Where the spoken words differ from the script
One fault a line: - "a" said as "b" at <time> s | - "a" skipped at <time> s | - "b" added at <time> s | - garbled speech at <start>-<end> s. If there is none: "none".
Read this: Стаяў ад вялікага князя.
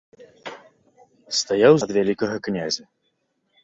none